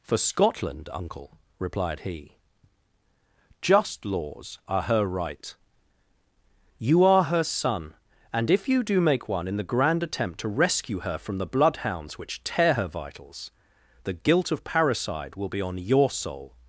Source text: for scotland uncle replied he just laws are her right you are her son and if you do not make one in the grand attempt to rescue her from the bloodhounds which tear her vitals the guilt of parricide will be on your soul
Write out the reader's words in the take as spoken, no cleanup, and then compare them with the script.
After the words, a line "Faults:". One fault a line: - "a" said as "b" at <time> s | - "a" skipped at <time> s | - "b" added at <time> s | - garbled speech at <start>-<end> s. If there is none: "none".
for scotland uncle replied he just laws are her right you are her son and if you do make one in the grand attempt to rescue her from the bloodhounds which tear her vitals the guilt of parricide will be on your soul
Faults:
- "not" skipped at 9.0 s